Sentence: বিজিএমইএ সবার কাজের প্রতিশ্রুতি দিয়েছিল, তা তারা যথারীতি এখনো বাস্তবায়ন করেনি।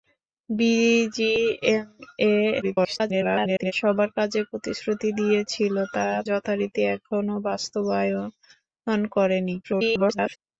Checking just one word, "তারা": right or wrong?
wrong